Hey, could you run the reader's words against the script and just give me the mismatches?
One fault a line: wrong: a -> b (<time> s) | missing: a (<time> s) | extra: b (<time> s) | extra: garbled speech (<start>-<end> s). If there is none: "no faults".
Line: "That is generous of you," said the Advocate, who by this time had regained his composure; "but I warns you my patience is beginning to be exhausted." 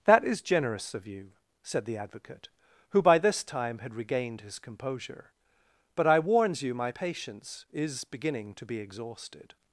no faults